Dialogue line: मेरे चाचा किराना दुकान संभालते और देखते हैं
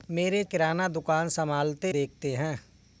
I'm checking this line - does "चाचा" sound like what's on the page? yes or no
no